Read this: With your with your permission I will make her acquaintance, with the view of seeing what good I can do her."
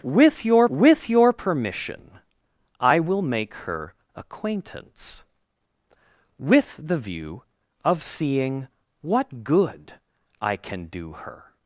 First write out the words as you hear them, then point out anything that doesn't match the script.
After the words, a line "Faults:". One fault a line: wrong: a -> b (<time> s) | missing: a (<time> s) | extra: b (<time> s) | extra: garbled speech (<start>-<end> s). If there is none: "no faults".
With your with your permission I will make her acquaintance, with the view of seeing what good I can do her."
Faults:
no faults